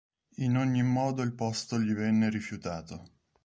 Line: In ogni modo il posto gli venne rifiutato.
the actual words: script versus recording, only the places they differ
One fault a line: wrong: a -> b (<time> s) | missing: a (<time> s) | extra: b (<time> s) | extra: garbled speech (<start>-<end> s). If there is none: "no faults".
no faults